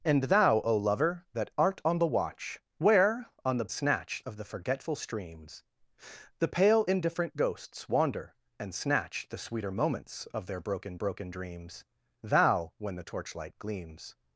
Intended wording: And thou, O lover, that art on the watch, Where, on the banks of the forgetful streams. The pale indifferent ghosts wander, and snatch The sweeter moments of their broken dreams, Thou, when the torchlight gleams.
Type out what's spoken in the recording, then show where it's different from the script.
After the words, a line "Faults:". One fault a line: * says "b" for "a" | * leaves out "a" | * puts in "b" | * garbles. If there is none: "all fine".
And thou, O lover, that art on the watch, Where, on the snatch of the forgetful streams. The pale indifferent ghosts wander, and snatch The sweeter moments of their broken broken dreams, Thou, when the torchlight gleams.
Faults:
* says "snatch" for "banks"
* puts in "broken"